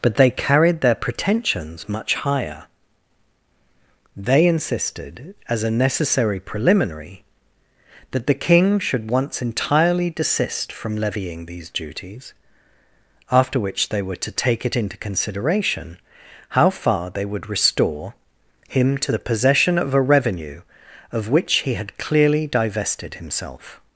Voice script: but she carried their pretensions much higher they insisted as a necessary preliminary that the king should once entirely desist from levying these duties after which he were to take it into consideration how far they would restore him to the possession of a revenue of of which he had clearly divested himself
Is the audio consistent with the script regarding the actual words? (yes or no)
no